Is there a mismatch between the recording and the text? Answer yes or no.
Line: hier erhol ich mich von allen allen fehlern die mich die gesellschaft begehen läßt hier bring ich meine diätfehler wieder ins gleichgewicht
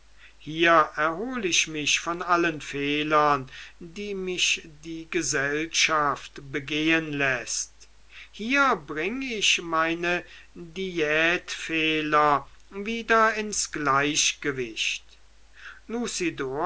yes